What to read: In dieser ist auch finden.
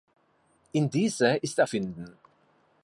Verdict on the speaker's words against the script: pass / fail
pass